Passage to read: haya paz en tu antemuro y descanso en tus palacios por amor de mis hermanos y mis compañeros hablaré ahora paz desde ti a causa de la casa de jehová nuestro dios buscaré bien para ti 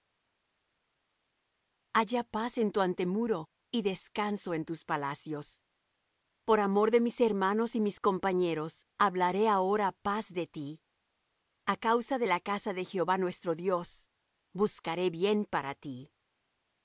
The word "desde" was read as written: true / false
false